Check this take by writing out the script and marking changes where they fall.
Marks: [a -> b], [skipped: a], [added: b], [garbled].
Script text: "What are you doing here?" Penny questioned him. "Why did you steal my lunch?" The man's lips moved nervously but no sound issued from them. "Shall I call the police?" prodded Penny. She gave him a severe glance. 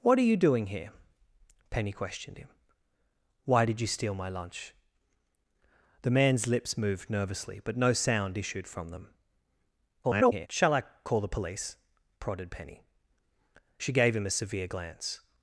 "What are you doing here?" Penny questioned him. "Why did you steal my lunch?" The man's lips moved nervously but no sound issued from them. [garbled] "Shall I call the police?" prodded Penny. She gave him a severe glance.